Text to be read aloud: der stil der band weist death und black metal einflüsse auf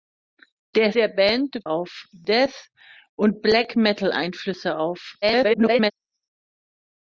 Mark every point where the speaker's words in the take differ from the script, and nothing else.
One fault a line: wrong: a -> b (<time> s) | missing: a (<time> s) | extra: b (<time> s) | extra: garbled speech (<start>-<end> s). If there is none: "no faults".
missing: stil (0.9 s)
wrong: weist -> auf (1.7 s)
extra: garbled speech (5.2-5.9 s)